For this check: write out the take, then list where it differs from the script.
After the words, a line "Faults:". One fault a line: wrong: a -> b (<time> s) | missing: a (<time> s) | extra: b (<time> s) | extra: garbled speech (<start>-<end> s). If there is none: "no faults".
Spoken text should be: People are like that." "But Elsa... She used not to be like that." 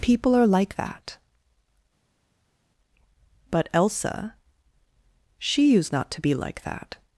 People are like that." "But Elsa... She used not to be like that."
Faults:
no faults